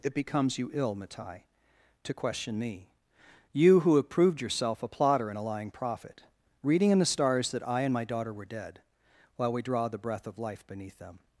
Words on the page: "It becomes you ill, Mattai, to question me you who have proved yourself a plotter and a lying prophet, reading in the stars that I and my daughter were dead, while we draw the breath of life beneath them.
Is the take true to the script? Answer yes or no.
yes